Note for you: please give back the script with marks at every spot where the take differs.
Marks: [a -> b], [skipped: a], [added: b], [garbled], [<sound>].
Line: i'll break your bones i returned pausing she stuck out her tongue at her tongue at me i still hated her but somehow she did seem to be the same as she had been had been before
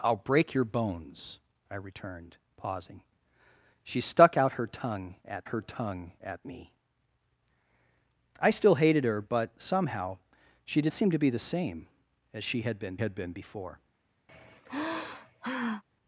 i'll break your bones i returned pausing she stuck out her tongue at her tongue at me i still hated her but somehow she did seem to be the same as she had been had been before [sigh]